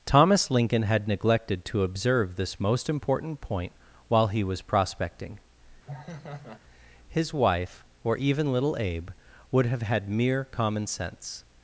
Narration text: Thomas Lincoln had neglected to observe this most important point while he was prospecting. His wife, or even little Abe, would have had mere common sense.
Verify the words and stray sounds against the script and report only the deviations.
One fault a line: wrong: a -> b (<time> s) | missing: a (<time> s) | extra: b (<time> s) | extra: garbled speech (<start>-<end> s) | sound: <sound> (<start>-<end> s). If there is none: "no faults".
sound: laugh (5.9-6.6 s)